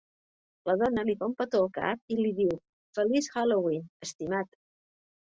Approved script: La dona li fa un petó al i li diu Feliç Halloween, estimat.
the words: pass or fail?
fail